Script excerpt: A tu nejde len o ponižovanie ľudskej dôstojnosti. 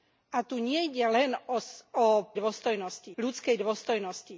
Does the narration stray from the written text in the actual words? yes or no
yes